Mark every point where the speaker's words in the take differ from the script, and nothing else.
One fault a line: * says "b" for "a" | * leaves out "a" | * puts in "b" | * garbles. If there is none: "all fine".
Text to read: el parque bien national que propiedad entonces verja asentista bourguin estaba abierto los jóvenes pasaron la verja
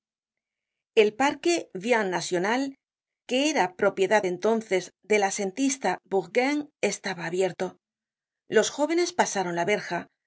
* puts in "era"
* says "del" for "verja"